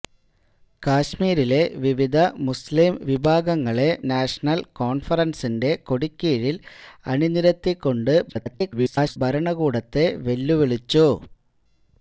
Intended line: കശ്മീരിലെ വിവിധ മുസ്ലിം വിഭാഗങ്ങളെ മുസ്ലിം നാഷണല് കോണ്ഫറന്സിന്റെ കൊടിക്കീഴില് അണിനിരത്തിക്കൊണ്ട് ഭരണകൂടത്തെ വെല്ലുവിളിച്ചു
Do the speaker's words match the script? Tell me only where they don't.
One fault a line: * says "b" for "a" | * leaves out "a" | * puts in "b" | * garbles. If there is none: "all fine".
* leaves out "മുസ്ലിം"
* garbles